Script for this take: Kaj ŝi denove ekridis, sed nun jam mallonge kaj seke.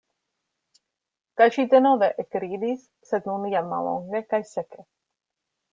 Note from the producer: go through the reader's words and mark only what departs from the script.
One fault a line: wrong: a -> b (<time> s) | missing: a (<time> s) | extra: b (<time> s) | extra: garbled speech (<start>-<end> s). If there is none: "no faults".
no faults